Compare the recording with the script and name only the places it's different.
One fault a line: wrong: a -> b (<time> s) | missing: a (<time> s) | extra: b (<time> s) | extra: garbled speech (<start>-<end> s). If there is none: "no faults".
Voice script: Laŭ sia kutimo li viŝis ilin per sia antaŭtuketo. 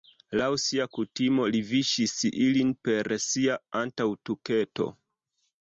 no faults